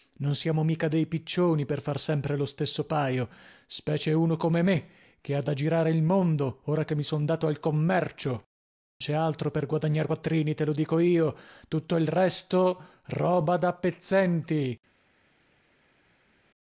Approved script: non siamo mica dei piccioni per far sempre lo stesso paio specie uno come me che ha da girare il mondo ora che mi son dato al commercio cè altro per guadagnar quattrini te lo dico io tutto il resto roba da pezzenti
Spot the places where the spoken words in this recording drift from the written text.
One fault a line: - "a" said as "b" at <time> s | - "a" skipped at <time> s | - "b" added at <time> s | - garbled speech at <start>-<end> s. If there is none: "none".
none